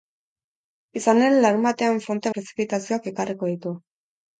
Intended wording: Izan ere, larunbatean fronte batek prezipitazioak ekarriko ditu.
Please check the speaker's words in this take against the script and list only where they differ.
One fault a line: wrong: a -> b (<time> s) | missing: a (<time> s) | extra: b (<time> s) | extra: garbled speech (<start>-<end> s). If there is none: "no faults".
missing: batek (2.3 s)